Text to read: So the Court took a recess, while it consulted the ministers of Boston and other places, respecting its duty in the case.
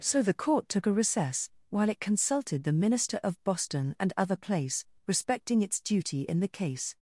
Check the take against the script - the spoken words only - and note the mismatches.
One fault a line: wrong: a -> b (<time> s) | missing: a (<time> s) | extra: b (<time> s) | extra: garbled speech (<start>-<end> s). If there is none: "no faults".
wrong: ministers -> minister (2.7 s)
wrong: places -> place (4.3 s)